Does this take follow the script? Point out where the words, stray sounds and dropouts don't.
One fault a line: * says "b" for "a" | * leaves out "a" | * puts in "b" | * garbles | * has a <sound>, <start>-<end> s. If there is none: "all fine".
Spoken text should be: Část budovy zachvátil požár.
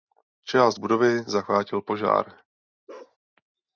* has a bark, 2.9-3.2 s